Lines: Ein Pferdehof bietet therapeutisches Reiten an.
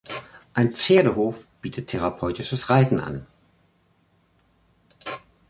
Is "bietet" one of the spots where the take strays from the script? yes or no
no